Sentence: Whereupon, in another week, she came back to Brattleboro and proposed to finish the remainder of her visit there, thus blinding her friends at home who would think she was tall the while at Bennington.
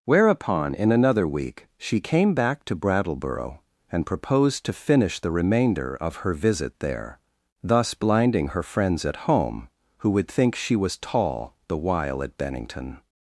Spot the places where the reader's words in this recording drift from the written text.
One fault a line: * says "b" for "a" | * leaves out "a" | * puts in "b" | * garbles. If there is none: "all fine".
all fine